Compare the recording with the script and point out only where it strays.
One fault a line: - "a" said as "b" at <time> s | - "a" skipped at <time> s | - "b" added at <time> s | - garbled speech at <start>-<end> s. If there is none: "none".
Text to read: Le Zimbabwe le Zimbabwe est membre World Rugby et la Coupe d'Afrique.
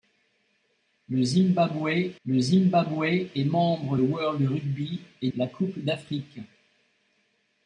none